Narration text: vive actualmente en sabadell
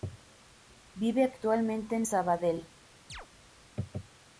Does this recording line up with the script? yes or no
yes